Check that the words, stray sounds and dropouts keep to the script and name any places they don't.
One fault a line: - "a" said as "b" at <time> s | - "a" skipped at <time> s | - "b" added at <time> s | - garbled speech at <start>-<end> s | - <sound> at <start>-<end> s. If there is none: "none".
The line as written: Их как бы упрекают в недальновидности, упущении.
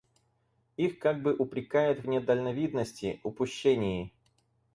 none